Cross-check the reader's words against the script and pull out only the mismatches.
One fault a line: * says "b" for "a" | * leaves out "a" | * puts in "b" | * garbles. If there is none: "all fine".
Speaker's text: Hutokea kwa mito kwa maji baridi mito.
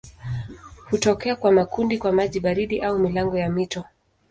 * says "makundi" for "mito"
* puts in "au milango ya"